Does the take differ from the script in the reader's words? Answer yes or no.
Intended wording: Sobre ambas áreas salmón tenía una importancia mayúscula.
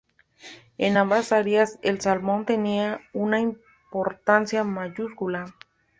yes